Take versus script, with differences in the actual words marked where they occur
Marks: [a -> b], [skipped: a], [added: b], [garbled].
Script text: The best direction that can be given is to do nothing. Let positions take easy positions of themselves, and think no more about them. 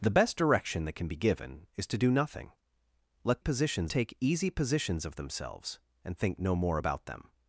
The best direction that can be given is to do nothing. Let positions take easy positions of themselves, and think no more about them.